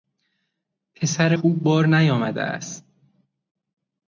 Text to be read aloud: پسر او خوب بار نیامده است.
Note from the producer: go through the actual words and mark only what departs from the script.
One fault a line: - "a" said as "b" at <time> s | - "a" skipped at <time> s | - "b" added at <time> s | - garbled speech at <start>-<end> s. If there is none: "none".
- "او" skipped at 1.3 s